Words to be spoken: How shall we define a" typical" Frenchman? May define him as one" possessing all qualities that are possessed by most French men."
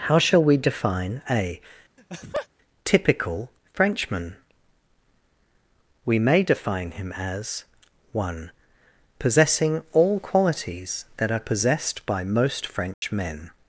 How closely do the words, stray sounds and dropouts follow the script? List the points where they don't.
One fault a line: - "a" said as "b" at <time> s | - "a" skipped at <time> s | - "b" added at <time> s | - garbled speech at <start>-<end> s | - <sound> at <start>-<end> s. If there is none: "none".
- laugh at 2.0-2.5 s
- "We" added at 6.0 s
- dropout at 12.9-13.0 s